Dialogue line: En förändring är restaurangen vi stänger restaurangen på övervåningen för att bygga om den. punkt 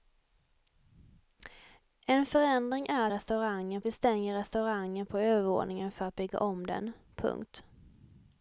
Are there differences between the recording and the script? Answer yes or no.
no